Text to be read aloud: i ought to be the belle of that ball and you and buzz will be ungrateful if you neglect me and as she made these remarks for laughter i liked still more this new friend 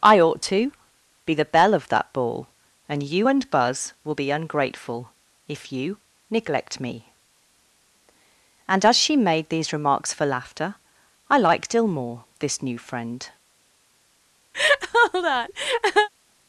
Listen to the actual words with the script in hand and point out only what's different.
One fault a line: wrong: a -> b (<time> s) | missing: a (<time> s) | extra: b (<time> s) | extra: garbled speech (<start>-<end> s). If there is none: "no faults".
wrong: still -> ill (11.7 s)